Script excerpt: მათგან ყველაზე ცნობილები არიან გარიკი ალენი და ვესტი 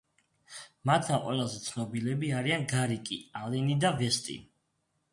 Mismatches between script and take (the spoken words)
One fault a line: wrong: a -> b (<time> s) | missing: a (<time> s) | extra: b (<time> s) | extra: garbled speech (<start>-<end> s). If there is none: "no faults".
no faults